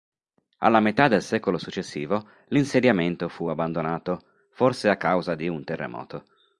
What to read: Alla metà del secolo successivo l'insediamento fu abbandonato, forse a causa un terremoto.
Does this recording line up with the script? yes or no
no